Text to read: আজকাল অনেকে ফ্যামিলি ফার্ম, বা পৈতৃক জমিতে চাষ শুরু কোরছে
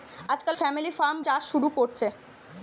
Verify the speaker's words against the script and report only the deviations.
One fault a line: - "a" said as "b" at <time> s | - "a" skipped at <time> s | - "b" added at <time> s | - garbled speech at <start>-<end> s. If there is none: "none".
- "অনেকে" skipped at 0.6 s
- "বা পৈতৃক জমিতে" skipped at 1.2 s